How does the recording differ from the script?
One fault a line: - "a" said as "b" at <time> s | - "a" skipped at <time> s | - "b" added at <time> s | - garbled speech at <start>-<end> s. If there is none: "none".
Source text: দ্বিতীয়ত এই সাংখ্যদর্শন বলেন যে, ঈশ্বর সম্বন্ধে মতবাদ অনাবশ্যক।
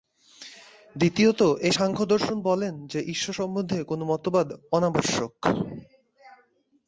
- "কোন" added at 3.8 s